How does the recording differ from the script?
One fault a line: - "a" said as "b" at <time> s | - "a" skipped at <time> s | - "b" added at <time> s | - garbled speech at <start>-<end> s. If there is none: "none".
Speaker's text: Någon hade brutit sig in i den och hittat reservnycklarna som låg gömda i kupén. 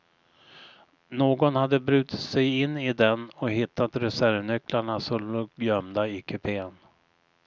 none